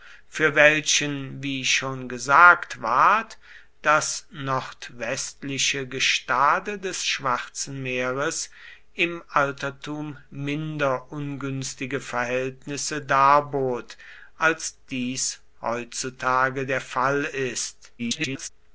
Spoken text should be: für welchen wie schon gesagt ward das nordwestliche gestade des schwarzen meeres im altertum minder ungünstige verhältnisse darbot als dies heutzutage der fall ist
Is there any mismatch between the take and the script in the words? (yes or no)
yes